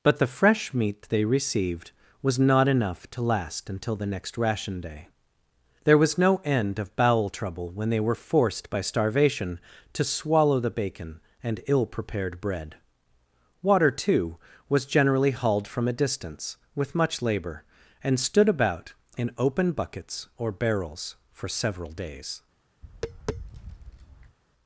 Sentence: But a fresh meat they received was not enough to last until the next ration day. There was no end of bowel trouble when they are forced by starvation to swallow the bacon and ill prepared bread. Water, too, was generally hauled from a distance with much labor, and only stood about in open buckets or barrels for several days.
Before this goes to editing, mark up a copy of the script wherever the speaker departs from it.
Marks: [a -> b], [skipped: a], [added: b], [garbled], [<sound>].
But [a -> the] fresh meat they received was not enough to last until the next ration day. There was no end of bowel trouble when they [are -> were] forced by starvation to swallow the bacon and ill prepared bread. Water, too, was generally hauled from a distance with much labor, and [skipped: only] stood about in open buckets or barrels for several days. [tap]